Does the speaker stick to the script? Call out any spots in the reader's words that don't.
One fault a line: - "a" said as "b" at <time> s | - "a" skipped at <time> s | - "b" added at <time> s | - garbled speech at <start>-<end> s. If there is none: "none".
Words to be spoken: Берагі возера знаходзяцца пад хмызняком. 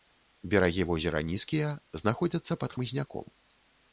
- "нізкія" added at 1.3 s